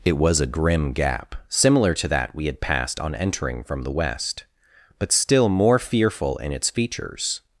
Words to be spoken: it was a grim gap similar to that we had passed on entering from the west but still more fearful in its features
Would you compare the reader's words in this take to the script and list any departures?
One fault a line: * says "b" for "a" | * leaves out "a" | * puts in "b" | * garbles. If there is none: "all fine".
all fine